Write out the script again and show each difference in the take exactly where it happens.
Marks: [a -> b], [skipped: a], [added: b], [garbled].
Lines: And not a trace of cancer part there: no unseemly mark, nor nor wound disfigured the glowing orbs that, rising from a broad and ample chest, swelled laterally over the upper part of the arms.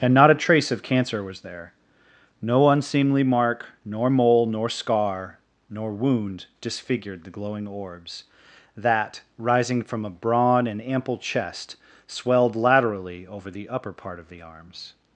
And not a trace of cancer [part -> was] there: no unseemly mark, nor [added: mole nor scar] nor wound disfigured the glowing orbs that, rising from a broad and ample chest, swelled laterally over the upper part of the arms.